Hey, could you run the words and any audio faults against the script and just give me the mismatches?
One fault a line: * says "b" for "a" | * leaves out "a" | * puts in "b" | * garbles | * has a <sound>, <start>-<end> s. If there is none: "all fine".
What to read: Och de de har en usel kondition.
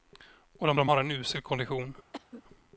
* has a cough, 2.1-2.4 s